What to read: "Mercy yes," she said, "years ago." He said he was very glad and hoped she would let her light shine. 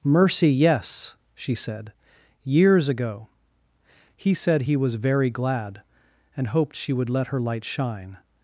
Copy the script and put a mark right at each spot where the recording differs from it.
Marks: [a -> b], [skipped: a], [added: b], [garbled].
"Mercy yes," she said, "years ago." He said he was very glad and hoped she would let her light shine.